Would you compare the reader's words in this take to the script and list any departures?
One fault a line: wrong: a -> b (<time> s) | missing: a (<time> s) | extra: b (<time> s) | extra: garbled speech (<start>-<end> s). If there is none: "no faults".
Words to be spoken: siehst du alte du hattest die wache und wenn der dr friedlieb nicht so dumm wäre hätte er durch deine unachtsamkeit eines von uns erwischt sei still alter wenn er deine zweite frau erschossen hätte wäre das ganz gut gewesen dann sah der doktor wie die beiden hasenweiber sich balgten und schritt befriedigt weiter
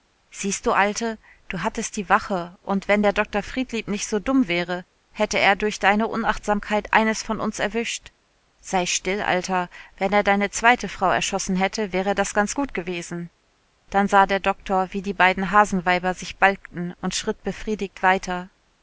no faults